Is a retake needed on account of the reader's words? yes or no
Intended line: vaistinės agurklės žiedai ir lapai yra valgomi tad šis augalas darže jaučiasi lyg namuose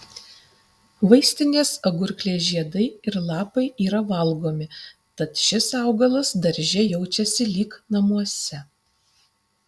no